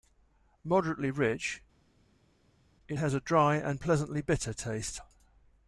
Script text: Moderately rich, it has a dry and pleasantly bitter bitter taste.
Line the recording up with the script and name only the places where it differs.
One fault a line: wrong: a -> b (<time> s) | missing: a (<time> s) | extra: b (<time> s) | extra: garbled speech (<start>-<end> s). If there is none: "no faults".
missing: bitter (4.5 s)